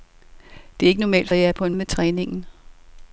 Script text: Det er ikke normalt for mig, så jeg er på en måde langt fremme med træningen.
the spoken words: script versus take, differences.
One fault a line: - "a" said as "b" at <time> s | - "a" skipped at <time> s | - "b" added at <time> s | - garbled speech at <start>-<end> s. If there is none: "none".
- "for mig så" skipped at 1.3 s
- "måde langt fremme" skipped at 1.7 s